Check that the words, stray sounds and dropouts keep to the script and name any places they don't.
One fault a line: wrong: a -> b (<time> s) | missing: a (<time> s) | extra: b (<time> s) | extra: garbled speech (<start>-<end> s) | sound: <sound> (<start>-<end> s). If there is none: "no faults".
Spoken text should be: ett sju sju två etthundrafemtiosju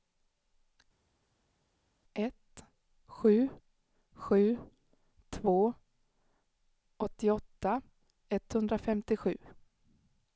extra: åttioåtta (7.0 s)